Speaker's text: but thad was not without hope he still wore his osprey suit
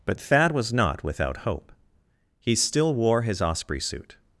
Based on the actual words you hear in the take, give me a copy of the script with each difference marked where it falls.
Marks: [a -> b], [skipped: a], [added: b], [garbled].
but thad was not without hope he still wore his osprey suit